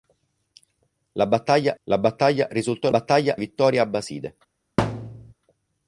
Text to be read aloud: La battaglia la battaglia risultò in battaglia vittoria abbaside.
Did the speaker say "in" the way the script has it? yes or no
yes